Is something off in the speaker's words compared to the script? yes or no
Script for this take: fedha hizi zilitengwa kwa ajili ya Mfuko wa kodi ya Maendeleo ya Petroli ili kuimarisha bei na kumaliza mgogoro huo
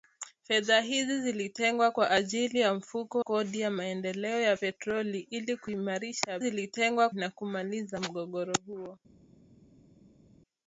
yes